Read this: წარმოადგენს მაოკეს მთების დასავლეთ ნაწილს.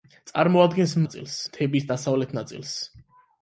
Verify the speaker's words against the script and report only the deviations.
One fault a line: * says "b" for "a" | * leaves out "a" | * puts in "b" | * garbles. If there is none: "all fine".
* says "ნაწილს" for "მაოკეს"